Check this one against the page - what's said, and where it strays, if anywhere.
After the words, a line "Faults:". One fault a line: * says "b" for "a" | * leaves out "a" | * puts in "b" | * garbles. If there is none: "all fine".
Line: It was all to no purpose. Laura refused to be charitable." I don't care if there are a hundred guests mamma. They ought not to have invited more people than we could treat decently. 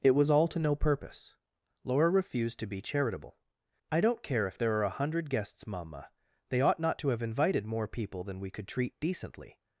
It was all to no purpose. Laura refused to be charitable." I don't care if there are a hundred guests mamma. They ought not to have invited more people than we could treat decently.
Faults:
all fine